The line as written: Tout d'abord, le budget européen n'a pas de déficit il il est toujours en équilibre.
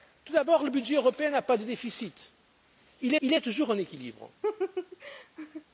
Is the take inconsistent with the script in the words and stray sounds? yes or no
yes